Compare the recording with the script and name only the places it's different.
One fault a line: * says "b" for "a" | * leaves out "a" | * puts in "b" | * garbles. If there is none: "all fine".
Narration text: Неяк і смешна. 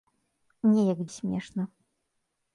all fine